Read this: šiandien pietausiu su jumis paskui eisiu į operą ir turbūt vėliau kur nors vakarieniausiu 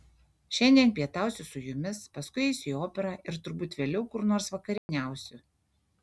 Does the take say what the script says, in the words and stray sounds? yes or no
no